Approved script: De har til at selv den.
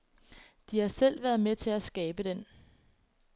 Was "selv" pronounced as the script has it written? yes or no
no